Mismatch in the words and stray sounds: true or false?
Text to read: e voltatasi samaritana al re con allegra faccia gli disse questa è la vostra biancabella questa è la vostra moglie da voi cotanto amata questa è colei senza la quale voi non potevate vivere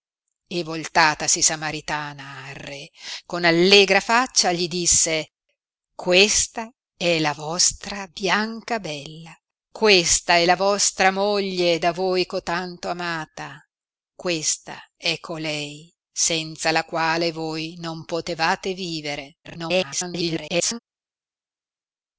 true